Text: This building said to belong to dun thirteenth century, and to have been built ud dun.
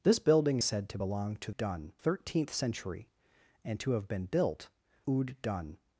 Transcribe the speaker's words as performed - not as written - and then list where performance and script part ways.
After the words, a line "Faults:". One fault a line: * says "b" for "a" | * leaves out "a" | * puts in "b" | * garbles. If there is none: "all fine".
This building said to belong to dun thirteenth century, and to have been built ud dun.
Faults:
all fine